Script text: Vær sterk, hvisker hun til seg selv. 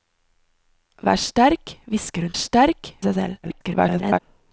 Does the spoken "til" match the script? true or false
false